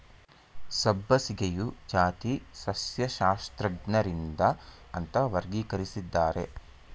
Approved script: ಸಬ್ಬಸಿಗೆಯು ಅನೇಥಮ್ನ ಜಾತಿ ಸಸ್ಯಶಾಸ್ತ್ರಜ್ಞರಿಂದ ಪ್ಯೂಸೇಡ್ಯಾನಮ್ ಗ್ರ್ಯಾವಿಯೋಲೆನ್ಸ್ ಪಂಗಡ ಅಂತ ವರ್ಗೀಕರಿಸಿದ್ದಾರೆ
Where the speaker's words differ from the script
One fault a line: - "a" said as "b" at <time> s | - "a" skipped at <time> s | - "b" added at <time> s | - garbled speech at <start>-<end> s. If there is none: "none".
- "ಅನೇಥಮ್ನ" skipped at 1.6 s
- "ಪ್ಯೂಸೇಡ್ಯಾನಮ್ ಗ್ರ್ಯಾವಿಯೋಲೆನ್ಸ್ ಪಂಗಡ" skipped at 4.4 s